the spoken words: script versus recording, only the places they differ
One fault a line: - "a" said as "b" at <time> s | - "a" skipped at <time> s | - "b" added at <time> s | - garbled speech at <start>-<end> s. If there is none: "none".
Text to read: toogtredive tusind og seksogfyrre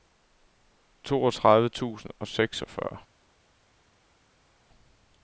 none